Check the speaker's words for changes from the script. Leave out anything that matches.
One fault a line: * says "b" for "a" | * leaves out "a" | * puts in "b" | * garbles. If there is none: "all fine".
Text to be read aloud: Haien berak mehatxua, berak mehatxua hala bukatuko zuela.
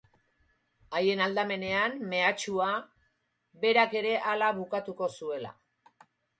* says "aldamenean" for "berak"
* says "ere" for "mehatxua"